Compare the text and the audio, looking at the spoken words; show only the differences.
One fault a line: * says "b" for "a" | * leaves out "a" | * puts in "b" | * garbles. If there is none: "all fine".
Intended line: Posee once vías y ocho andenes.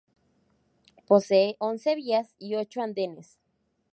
all fine